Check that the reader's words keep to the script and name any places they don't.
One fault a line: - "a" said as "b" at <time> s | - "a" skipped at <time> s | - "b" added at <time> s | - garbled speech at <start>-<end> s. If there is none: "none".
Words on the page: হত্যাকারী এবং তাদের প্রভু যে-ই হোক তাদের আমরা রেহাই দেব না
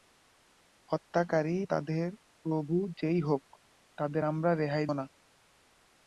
- "এবং" skipped at 1.6 s
- "দেব" skipped at 4.9 s